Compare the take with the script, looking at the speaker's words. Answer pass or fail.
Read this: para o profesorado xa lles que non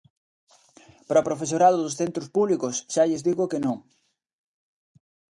fail